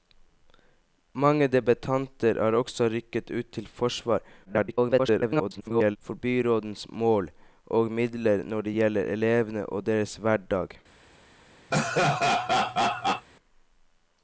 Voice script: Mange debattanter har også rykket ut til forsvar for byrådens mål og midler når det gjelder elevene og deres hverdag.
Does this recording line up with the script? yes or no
no